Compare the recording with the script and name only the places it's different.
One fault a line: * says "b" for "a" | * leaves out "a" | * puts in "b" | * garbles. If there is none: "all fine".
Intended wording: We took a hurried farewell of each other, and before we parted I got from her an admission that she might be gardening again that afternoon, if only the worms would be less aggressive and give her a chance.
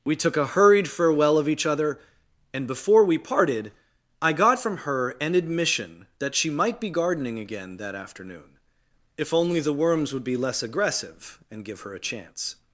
all fine